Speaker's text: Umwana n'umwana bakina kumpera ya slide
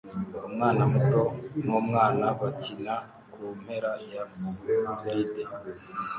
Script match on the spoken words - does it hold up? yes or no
no